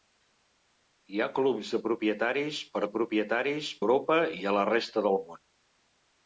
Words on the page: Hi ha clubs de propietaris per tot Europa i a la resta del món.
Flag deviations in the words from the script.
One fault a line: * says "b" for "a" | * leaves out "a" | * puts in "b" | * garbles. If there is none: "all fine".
* says "propietaris" for "tot"